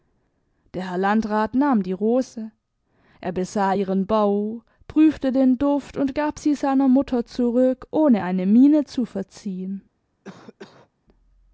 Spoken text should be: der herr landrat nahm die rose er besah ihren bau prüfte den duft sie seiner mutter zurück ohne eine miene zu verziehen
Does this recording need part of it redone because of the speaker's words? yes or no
yes